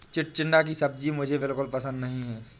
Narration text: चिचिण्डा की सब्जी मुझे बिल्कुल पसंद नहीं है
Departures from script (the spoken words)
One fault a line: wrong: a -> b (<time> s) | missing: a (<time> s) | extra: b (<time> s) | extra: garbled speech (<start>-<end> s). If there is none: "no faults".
no faults